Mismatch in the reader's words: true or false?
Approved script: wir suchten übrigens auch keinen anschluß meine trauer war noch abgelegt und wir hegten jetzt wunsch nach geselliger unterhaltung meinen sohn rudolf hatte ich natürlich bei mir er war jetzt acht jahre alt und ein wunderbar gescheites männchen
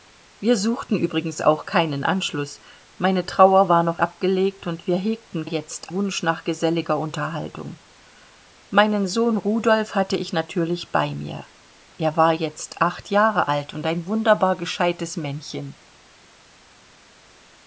false